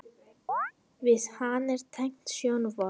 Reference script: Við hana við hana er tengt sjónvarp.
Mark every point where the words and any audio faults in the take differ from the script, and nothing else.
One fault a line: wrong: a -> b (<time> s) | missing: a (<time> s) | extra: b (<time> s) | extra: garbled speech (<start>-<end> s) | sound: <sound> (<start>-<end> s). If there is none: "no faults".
sound: chirp (0.5-0.7 s)
missing: við hana (1.8 s)